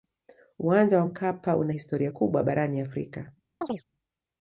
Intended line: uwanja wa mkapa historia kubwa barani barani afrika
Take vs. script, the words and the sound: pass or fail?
fail